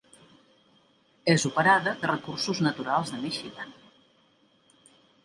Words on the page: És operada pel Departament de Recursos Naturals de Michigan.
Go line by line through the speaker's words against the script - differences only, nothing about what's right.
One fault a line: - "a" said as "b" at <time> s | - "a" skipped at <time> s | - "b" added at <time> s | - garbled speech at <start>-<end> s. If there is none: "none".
- "pel Departament" skipped at 1.9 s